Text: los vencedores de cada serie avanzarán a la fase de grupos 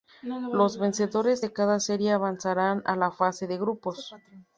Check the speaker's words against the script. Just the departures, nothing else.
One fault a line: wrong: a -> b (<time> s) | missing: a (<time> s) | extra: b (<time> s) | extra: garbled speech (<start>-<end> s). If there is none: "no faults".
no faults